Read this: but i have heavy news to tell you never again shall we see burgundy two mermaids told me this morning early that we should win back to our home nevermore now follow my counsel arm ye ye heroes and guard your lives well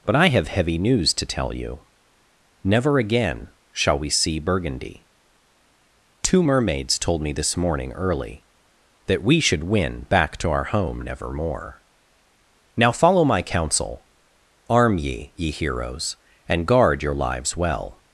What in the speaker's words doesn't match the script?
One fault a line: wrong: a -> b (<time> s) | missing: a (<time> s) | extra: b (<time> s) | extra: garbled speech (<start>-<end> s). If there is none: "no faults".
no faults